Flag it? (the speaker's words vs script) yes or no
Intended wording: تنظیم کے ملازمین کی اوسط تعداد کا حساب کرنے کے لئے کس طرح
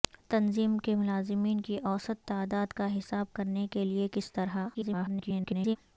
yes